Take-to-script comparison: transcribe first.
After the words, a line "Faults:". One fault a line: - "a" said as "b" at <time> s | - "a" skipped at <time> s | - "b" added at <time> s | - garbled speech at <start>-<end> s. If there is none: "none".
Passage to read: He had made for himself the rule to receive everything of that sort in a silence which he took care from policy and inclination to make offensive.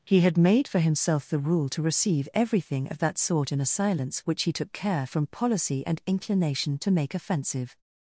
He had made for himself the rule to receive everything of that sort in a silence which he took care from policy and inclination to make offensive.
Faults:
none